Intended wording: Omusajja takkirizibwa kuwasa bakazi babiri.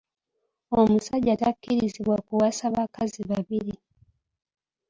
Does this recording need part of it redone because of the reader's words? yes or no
no